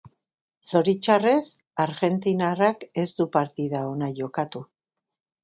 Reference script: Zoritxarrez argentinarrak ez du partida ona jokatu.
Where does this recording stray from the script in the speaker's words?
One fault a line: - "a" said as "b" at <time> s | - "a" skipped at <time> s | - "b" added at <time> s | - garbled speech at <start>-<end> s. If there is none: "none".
none